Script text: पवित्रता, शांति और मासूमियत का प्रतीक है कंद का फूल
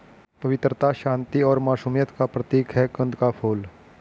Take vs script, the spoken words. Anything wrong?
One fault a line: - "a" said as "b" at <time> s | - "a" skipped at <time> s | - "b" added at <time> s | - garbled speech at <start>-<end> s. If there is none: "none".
none